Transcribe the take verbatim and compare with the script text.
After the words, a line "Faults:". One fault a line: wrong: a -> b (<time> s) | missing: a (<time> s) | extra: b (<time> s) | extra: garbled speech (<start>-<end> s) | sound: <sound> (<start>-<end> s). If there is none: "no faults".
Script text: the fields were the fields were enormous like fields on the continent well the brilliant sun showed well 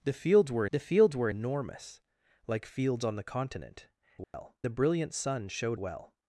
the fields were the fields were enormous like fields on the continent well the brilliant sun showed well
Faults:
sound: dropout (4.2-4.3 s)